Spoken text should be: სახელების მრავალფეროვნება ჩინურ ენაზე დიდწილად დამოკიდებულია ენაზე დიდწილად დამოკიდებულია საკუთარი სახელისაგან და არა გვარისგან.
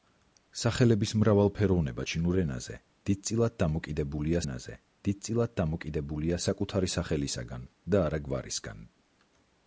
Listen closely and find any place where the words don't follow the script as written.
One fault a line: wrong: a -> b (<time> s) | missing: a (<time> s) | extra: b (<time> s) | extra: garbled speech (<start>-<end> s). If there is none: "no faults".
no faults